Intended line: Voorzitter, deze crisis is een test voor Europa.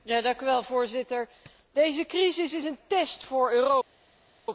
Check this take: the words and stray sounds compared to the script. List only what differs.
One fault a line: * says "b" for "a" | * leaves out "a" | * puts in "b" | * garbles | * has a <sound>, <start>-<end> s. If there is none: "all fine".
all fine